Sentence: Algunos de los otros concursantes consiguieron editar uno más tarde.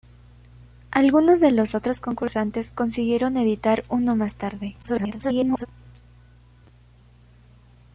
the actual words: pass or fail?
fail